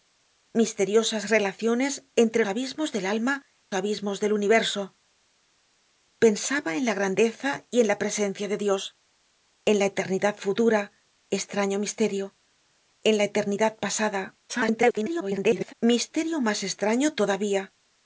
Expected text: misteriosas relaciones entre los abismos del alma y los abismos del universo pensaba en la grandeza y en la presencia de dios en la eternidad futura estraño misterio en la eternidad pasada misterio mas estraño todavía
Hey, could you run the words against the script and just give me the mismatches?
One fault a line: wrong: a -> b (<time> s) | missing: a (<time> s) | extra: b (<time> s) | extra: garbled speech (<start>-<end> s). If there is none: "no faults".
missing: los (2.4 s)
missing: y los (3.4 s)
extra: garbled speech (14.5-15.7 s)